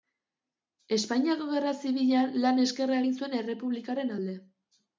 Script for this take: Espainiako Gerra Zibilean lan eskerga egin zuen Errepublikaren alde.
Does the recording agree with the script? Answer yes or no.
yes